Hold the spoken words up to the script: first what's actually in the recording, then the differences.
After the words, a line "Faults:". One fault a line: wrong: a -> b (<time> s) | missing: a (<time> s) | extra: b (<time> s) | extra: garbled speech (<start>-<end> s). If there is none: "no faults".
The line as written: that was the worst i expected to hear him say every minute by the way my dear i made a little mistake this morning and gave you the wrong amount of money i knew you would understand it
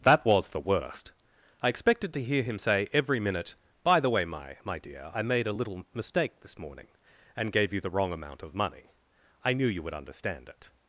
that was the worst i expected to hear him say every minute by the way my my dear i made a little mistake this morning and gave you the wrong amount of money i knew you would understand it
Faults:
extra: my (4.6 s)